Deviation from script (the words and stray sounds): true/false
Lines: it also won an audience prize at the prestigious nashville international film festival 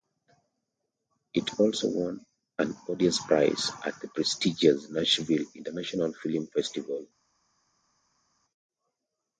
false